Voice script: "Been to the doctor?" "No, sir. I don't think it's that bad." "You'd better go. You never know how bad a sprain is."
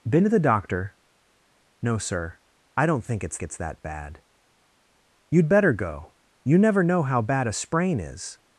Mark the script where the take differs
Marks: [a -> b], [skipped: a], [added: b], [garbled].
"Been to the doctor?" "No, sir. I don't think it's [added: it's] that bad." "You'd better go. You never know how bad a sprain is."